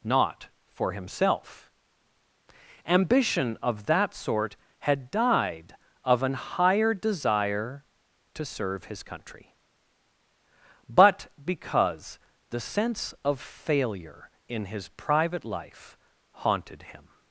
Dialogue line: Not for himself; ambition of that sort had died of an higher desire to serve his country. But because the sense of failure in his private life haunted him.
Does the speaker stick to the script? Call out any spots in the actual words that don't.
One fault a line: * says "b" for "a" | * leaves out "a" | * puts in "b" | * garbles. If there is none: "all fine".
all fine